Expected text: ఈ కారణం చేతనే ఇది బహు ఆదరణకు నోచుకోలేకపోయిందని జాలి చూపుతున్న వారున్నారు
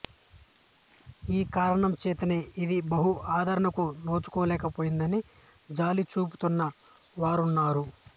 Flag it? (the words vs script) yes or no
no